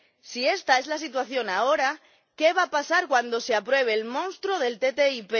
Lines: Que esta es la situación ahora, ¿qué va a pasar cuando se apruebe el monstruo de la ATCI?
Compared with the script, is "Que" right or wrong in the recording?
wrong